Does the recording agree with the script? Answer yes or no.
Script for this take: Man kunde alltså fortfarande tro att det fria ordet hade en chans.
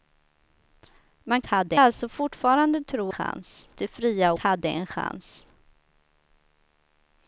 no